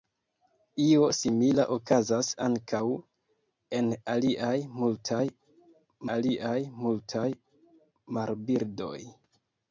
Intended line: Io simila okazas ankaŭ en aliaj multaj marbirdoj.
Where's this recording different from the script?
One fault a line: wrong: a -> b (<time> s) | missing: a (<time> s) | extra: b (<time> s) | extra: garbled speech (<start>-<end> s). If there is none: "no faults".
extra: aliaj multaj (6.2 s)